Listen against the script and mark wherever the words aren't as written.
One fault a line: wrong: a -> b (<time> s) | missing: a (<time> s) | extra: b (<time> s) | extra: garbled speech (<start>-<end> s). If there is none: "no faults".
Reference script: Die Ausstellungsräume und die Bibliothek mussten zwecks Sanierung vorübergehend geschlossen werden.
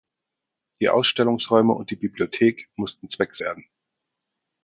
missing: Sanierung vorübergehend geschlossen (3.4 s)